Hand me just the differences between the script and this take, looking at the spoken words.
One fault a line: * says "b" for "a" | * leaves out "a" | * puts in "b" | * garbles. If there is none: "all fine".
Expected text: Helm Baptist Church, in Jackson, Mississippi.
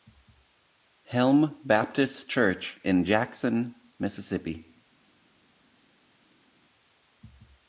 all fine